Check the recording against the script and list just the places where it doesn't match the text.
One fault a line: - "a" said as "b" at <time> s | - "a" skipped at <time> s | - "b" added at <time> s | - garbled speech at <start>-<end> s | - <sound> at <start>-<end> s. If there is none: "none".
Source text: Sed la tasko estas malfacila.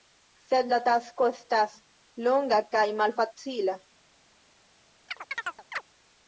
- "longa kaj" added at 2.3 s
- chirp at 5.1-5.8 s